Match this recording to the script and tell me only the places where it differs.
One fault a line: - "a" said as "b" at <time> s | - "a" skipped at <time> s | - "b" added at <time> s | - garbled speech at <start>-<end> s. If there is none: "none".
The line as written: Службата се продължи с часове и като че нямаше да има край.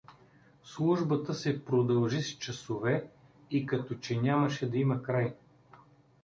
none